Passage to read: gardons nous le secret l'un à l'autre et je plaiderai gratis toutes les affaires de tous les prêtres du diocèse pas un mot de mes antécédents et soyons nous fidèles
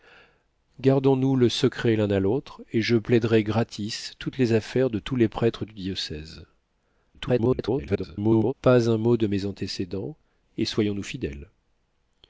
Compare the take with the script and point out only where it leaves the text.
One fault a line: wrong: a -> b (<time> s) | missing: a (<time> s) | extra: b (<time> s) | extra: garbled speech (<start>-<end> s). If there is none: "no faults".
extra: garbled speech (7.1-8.5 s)